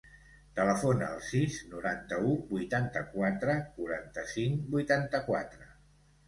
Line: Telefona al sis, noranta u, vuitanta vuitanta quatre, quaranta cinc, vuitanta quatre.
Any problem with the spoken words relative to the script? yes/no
yes